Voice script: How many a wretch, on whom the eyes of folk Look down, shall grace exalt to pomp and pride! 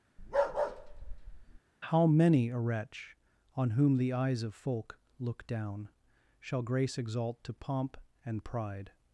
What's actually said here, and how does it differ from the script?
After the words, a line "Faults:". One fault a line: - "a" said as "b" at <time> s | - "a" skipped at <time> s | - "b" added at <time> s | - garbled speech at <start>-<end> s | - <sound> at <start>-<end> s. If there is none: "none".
How many a wretch, on whom the eyes of folk Look down, shall grace exalt to pomp and pride!
Faults:
- bark at 0.2-1.6 s